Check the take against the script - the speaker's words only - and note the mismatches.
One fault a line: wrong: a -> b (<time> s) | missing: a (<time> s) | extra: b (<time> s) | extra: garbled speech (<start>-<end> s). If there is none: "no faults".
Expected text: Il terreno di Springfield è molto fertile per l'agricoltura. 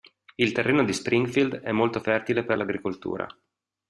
no faults